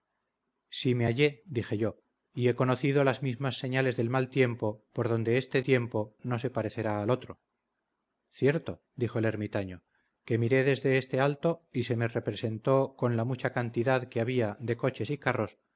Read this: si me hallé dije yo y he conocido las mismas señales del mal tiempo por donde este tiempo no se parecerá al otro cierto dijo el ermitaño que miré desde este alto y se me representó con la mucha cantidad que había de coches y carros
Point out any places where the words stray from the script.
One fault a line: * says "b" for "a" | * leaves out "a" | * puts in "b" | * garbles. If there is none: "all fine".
all fine